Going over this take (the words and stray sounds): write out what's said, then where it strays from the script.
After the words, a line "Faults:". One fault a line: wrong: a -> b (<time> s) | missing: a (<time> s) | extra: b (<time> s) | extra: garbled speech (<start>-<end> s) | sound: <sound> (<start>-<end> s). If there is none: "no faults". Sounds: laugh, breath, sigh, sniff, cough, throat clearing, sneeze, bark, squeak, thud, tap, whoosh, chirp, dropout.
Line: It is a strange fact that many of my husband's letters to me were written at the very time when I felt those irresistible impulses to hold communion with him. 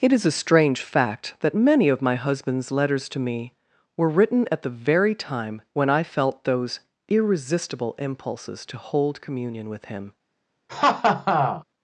It is a strange fact that many of my husband's letters to me were written at the very time when I felt those irresistible impulses to hold communion with him.
Faults:
sound: laugh (10.7-11.6 s)